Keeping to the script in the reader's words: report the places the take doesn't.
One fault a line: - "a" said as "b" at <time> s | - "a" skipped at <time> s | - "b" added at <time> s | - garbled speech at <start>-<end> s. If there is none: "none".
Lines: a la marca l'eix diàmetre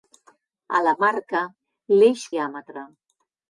none